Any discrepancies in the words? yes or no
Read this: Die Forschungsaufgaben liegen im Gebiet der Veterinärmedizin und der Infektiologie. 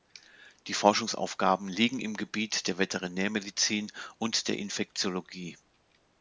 no